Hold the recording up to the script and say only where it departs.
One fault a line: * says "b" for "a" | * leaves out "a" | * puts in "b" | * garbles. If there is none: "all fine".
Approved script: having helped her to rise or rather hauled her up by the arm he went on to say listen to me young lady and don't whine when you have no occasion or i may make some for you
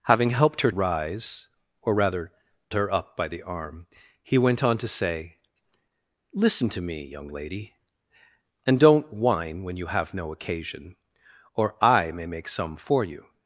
* leaves out "to"
* leaves out "hauled"